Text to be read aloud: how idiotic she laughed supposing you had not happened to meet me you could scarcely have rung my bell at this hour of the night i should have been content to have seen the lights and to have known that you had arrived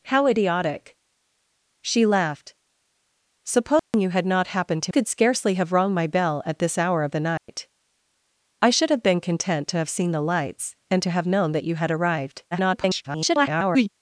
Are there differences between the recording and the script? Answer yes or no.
yes